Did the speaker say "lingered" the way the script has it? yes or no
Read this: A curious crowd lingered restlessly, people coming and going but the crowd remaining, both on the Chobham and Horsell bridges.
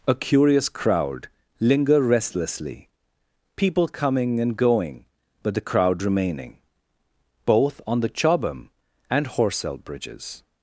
no